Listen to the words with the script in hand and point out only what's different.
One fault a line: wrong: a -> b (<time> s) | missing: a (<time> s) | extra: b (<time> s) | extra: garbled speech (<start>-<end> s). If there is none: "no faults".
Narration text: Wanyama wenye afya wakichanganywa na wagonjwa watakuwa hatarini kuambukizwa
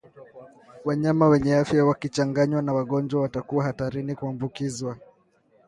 no faults